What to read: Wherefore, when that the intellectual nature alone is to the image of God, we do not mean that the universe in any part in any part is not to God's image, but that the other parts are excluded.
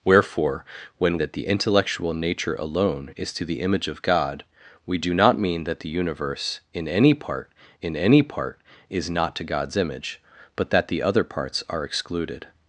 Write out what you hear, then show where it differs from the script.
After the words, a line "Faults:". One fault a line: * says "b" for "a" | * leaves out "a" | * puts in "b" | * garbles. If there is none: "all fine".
Wherefore, when that the intellectual nature alone is to the image of God, we do not mean that the universe in any part in any part is not to God's image, but that the other parts are excluded.
Faults:
all fine